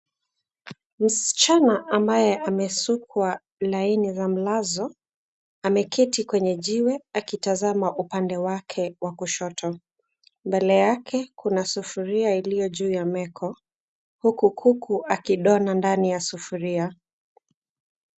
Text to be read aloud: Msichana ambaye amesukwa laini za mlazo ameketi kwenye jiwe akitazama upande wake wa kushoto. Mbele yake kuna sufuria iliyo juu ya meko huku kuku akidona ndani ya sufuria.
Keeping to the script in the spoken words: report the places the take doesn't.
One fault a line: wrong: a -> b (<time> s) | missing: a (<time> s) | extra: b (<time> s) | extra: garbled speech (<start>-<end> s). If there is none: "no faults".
no faults